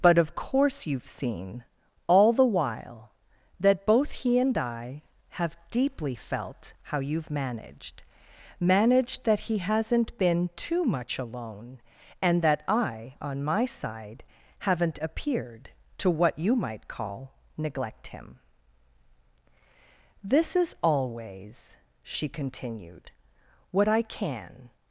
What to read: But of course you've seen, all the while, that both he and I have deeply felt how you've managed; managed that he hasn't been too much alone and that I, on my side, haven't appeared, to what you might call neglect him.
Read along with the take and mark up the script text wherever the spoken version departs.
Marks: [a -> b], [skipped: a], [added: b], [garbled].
But of course you've seen, all the while, that both he and I have deeply felt how you've managed; managed that he hasn't been too much alone and that I, on my side, haven't appeared, to what you might call neglect him. [added: This is always she continued what I can]